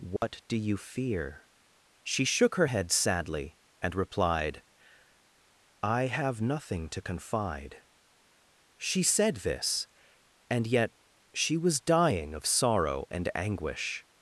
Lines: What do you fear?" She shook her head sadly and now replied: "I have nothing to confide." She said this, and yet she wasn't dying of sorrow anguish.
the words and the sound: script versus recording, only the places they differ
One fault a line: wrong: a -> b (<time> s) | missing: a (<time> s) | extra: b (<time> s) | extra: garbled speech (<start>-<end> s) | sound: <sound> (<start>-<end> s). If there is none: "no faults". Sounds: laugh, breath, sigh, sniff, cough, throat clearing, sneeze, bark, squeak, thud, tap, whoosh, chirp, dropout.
sound: dropout (0.2-0.2 s)
missing: now (3.9 s)
wrong: wasn't -> was (11.6 s)
extra: and (13.1 s)